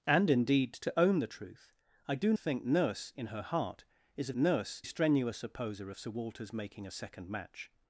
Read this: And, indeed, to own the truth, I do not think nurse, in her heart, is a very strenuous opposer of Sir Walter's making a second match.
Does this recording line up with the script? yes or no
no